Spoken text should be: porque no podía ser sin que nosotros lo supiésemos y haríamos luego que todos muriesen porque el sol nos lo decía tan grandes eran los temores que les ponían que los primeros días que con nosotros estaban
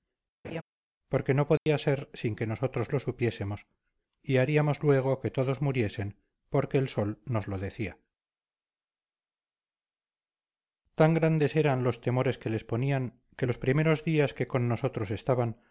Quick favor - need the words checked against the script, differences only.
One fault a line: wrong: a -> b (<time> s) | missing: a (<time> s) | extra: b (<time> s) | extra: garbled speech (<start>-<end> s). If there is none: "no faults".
no faults